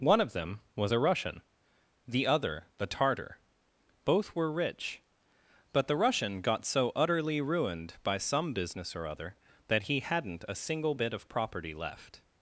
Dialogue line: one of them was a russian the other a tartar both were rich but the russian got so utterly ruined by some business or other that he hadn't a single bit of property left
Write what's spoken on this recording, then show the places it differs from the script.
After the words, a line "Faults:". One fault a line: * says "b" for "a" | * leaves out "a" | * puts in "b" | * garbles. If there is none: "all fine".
one of them was a russian the other the tartar both were rich but the russian got so utterly ruined by some business or other that he hadn't a single bit of property left
Faults:
* says "the" for "a"